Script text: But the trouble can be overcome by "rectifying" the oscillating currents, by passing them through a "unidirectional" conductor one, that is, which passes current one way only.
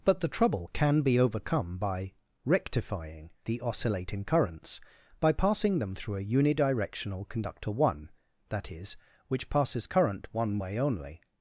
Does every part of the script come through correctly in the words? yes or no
yes